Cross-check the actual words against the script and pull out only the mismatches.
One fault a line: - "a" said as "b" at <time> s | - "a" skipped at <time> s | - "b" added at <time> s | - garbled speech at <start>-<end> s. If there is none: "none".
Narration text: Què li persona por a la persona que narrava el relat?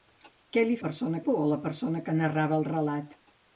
none